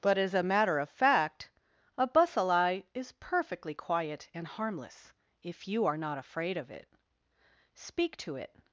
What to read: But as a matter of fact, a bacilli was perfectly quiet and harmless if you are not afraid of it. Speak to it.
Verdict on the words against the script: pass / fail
fail